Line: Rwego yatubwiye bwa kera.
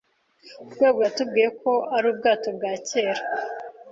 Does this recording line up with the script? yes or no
no